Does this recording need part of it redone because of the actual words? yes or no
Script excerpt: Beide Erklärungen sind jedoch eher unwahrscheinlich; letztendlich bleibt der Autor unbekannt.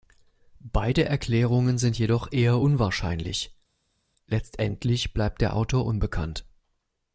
no